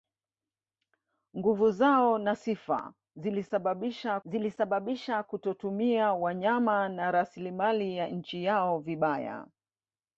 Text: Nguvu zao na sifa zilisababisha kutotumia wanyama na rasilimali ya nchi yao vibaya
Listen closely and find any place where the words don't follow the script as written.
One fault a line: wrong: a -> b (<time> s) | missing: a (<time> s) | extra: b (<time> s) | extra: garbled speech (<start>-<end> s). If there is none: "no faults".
extra: zilisababisha (4.2 s)